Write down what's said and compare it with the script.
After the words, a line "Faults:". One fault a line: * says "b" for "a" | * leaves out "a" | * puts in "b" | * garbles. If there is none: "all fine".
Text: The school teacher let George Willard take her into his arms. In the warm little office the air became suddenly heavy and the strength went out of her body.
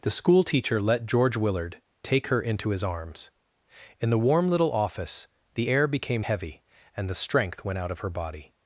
The school teacher let George Willard take her into his arms. In the warm little office the air became heavy and the strength went out of her body.
Faults:
* leaves out "suddenly"